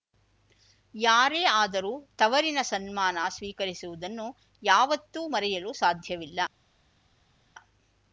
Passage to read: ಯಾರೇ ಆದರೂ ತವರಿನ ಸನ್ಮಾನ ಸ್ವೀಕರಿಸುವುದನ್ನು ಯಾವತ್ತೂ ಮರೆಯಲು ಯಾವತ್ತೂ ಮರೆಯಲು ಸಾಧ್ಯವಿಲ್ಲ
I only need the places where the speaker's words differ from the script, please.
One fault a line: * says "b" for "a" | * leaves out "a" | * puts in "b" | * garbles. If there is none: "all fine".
* leaves out "ಯಾವತ್ತೂ ಮರೆಯಲು"